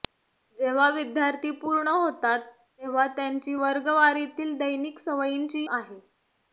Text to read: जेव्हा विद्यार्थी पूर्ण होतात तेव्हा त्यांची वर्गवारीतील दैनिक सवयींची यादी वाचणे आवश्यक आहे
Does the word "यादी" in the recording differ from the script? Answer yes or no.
yes